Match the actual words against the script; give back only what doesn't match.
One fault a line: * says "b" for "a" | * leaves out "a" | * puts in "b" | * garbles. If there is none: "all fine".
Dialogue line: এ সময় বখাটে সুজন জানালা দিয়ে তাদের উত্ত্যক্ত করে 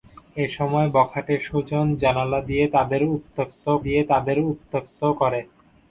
* puts in "দিয়ে তাদের উত্ত্যক্ত"